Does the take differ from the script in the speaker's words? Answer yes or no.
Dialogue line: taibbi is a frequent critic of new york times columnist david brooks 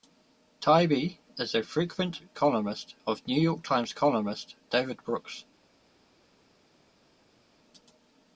yes